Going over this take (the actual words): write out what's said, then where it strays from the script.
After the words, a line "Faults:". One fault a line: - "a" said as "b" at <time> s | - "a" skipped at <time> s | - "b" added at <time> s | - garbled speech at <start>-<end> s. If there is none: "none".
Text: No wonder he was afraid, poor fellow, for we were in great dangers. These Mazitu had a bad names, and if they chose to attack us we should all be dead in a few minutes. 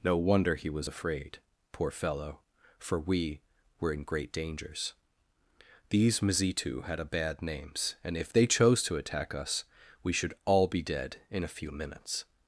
No wonder he was afraid, poor fellow, for we were in great dangers. These Mazitu had a bad names, and if they chose to attack us we should all be dead in a few minutes.
Faults:
none